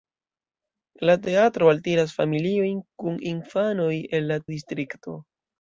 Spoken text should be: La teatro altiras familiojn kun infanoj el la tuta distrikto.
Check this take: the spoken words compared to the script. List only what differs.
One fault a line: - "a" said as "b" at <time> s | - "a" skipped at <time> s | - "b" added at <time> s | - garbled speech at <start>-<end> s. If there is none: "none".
- "tuta" skipped at 4.4 s